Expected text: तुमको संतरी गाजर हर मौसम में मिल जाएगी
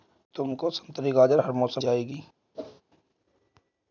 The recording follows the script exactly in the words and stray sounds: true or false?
false